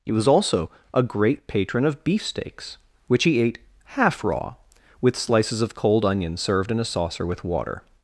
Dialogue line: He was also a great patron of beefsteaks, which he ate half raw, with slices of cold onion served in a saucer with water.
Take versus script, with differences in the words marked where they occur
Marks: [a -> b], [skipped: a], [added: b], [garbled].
He was also a great patron of beefsteaks, which he ate half raw, with slices of cold onion served in a saucer with water.